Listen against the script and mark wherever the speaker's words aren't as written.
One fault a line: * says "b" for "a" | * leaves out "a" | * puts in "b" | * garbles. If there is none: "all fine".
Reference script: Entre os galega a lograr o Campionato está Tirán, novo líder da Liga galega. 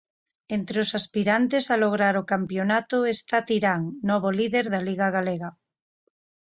* says "aspirantes" for "galega"